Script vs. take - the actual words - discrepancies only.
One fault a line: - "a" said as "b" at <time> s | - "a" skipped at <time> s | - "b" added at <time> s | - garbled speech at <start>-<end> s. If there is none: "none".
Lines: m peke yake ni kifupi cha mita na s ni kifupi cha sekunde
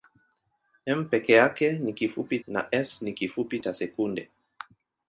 - "cha mita" skipped at 2.4 s